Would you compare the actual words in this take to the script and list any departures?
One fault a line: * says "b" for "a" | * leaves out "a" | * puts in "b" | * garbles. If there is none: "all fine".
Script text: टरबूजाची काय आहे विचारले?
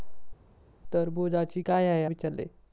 all fine